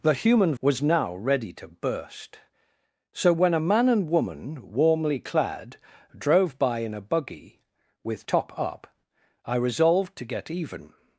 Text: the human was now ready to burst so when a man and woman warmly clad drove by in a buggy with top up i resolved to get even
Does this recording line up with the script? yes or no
yes